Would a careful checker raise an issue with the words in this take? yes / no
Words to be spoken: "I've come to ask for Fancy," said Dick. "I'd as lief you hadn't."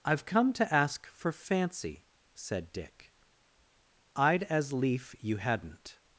no